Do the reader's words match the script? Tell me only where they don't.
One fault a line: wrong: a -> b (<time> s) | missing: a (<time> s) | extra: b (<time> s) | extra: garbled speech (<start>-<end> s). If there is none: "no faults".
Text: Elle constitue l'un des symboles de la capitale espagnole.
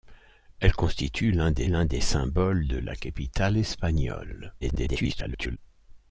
extra: l'un des (1.6 s)
extra: garbled speech (4.6-5.6 s)